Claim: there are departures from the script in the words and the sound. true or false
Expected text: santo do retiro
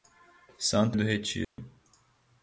true